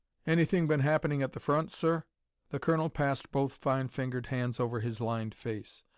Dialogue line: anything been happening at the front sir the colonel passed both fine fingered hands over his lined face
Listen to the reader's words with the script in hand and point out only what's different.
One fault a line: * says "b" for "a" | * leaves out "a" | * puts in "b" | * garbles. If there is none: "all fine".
all fine